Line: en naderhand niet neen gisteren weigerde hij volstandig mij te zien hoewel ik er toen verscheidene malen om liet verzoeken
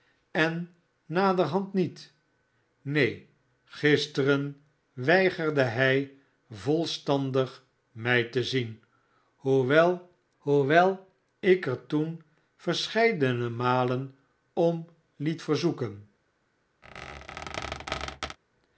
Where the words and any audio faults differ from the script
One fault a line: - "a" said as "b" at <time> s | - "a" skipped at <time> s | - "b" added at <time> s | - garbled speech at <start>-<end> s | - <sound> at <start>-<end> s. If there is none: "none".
- "hoewel" added at 10.4 s
- squeak at 16.8-18.4 s